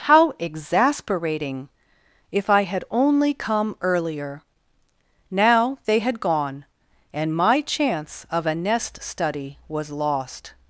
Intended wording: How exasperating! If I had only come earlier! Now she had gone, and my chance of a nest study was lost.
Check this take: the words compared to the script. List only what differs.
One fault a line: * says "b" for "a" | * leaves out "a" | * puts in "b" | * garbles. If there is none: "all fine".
* says "they" for "she"